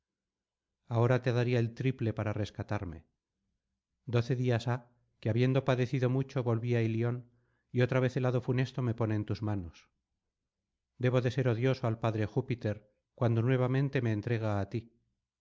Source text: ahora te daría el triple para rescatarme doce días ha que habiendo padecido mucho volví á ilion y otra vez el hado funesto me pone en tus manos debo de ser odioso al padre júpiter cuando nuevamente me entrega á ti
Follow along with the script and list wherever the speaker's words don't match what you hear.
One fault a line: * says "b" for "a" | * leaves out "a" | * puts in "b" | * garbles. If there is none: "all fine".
all fine